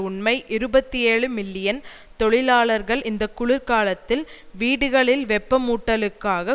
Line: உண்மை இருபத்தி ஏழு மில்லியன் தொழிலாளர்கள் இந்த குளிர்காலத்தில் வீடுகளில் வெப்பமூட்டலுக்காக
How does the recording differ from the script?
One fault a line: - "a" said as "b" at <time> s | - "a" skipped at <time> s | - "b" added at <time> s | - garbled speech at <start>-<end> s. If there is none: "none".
none